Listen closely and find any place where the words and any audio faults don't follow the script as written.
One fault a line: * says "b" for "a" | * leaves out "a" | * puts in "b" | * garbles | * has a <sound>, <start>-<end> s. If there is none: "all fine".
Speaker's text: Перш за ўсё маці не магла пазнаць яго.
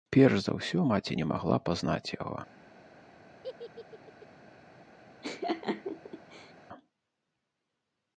* has a laugh, 3.4-4.3 s
* has a laugh, 5.2-6.5 s